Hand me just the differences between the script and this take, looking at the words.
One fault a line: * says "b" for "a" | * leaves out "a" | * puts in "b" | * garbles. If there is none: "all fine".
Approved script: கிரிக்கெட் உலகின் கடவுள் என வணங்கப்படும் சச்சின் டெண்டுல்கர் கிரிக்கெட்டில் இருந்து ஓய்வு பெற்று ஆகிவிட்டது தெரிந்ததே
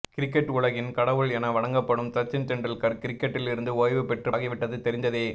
all fine